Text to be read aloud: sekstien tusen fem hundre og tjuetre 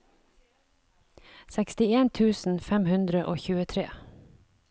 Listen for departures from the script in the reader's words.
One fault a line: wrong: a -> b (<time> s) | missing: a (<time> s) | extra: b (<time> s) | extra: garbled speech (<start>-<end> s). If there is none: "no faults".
no faults